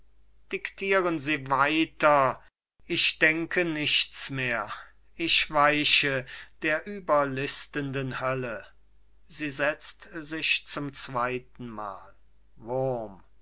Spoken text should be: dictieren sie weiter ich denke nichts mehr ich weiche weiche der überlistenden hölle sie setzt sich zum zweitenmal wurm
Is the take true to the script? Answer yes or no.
no